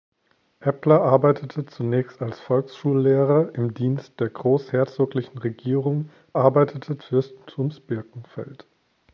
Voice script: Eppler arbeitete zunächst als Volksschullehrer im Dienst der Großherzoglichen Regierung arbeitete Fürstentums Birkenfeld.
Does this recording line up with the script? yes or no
yes